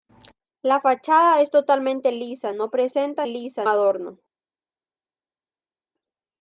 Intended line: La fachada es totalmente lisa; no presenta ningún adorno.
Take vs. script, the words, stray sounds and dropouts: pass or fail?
fail